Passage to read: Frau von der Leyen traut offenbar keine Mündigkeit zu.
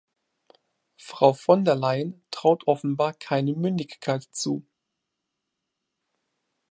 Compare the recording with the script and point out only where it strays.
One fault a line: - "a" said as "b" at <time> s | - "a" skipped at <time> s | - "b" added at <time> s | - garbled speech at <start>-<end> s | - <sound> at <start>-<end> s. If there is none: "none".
none